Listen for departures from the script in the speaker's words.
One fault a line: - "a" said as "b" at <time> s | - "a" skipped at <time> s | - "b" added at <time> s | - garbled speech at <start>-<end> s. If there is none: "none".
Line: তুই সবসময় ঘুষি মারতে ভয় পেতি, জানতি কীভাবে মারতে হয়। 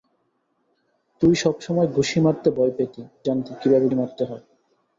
none